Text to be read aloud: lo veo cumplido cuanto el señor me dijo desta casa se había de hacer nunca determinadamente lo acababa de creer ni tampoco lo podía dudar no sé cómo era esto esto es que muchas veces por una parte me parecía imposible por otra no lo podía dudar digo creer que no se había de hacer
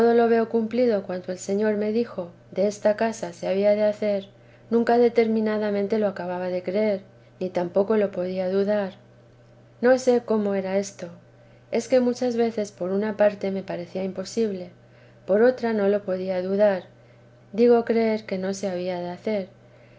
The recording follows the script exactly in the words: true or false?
false